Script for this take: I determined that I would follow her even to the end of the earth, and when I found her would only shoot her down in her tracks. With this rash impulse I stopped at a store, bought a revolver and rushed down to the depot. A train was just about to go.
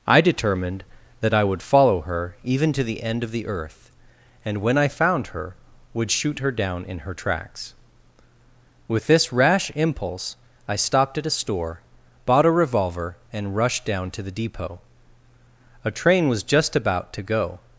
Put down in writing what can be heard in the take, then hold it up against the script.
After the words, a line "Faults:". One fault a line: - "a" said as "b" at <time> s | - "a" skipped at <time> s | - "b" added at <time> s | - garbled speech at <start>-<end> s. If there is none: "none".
I determined that I would follow her even to the end of the earth, and when I found her would shoot her down in her tracks. With this rash impulse I stopped at a store, bought a revolver and rushed down to the depot. A train was just about to go.
Faults:
- "only" skipped at 6.1 s